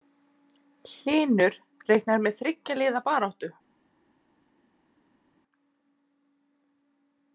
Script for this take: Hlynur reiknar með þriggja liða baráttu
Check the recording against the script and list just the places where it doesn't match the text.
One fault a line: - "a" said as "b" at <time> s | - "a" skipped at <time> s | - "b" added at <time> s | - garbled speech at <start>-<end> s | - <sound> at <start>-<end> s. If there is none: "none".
none